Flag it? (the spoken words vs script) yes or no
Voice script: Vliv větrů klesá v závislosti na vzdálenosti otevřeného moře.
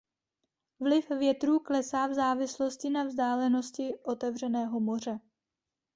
no